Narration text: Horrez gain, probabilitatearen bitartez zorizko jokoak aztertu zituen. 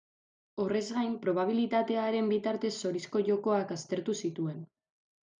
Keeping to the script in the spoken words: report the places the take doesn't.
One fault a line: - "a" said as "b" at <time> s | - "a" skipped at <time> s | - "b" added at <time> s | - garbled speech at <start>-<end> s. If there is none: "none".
none